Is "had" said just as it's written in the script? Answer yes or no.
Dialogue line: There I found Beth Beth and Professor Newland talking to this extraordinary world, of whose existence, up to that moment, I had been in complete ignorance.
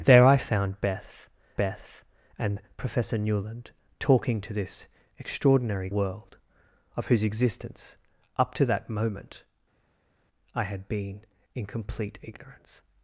yes